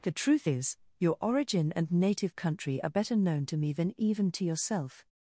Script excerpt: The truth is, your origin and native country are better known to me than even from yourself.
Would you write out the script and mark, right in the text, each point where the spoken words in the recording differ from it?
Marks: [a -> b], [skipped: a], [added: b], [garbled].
The truth is, your origin and native country are better known to me than even [from -> to] yourself.